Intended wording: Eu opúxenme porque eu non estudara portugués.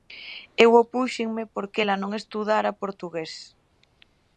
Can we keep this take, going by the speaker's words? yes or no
no